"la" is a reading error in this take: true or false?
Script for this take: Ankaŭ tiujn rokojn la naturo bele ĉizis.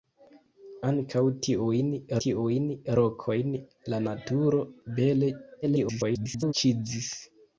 false